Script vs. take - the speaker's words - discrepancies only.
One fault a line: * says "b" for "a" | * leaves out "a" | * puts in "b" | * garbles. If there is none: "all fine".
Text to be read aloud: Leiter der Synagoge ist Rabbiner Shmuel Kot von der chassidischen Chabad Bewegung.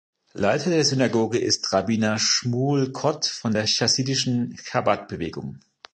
all fine